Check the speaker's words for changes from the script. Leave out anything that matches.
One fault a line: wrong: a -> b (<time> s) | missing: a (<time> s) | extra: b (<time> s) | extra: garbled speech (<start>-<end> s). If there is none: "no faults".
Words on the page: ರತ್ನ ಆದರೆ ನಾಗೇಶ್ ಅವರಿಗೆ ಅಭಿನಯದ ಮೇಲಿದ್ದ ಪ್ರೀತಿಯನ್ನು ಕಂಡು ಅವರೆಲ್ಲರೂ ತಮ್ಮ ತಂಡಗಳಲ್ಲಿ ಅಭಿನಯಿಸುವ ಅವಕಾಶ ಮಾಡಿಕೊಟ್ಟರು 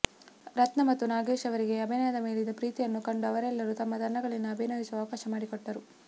wrong: ಆದರೆ -> ಮತ್ತು (0.8 s)